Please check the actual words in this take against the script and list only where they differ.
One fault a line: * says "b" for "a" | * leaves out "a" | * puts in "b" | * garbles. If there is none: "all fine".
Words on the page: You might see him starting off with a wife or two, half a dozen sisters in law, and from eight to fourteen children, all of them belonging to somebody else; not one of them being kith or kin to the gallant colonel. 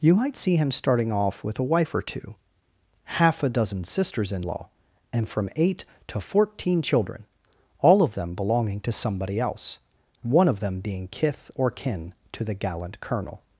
* leaves out "not"